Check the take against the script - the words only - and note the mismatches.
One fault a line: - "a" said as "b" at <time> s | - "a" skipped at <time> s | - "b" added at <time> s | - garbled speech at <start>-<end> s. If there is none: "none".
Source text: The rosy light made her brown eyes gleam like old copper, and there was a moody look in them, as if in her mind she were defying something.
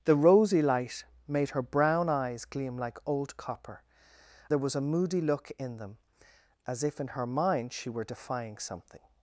- "and" skipped at 3.8 s